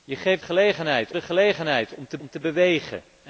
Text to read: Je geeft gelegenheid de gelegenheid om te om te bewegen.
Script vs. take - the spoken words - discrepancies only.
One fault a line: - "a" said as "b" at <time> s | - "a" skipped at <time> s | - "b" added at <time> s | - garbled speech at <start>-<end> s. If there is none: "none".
none